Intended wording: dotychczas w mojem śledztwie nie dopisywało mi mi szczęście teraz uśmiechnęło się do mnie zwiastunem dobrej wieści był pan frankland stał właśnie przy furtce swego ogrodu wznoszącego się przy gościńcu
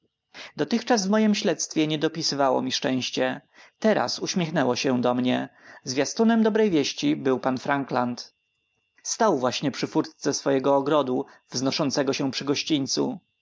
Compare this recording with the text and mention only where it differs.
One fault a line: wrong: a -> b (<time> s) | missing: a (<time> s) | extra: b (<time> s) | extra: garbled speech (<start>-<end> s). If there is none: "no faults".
missing: mi (2.7 s)